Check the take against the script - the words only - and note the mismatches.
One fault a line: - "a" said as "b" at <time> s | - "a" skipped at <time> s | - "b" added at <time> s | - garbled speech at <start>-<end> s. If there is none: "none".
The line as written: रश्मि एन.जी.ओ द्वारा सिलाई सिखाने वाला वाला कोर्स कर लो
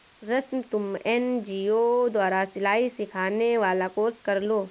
- "तुम" added at 0.7 s
- "वाला" skipped at 3.9 s